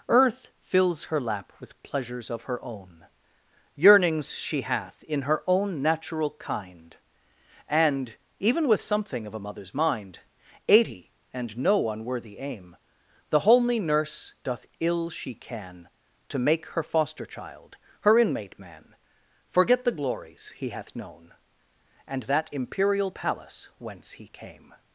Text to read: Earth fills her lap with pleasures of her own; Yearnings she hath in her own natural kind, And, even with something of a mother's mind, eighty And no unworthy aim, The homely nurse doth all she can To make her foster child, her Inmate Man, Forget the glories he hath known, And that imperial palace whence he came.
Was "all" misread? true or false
true